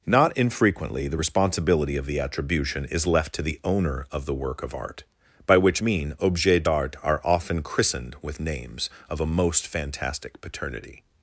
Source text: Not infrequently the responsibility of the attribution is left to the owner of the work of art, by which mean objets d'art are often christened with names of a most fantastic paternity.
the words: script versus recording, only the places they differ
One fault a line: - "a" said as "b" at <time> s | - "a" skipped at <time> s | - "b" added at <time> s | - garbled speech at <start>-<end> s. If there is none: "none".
none